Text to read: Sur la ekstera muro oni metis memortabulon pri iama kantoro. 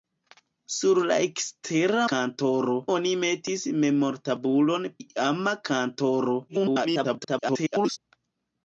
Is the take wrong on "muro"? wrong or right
wrong